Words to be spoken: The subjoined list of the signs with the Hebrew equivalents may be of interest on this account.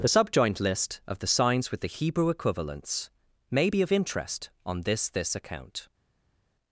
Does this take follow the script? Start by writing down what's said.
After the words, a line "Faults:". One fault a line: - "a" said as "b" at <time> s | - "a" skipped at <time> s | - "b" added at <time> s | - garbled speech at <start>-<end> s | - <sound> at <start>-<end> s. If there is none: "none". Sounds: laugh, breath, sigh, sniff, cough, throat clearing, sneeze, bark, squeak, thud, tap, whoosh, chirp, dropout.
The subjoined list of the signs with the Hebrew equivalents may be of interest on this this account.
Faults:
- "this" added at 5.1 s